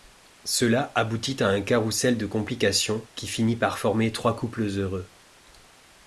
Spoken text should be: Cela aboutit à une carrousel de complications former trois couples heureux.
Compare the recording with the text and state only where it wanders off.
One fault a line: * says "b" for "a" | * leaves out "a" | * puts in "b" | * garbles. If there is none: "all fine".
* says "un" for "une"
* puts in "qui finit par"